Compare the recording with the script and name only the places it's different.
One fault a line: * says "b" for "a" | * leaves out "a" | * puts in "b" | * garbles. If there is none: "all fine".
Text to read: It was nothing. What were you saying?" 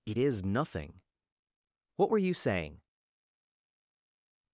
* says "is" for "was"